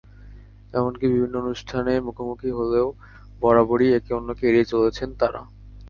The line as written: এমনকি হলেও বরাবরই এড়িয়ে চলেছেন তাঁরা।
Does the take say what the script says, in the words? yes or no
no